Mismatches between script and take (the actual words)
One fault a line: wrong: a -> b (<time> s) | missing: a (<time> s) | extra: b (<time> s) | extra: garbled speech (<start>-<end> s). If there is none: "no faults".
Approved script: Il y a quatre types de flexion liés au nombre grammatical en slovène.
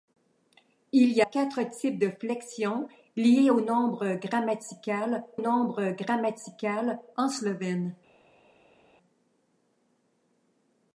missing: a (1.2 s)
extra: nombre grammatical (5.4 s)